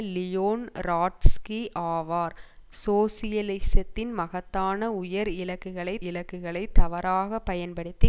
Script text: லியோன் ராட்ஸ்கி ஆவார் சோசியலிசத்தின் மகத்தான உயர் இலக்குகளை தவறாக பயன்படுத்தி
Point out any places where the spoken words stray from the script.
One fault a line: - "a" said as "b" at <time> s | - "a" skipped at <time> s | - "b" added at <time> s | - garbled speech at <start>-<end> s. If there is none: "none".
- "இலக்குகளை" added at 6.0 s